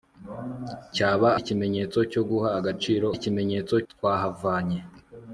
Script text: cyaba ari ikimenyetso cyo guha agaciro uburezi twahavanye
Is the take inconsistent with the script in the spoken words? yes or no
yes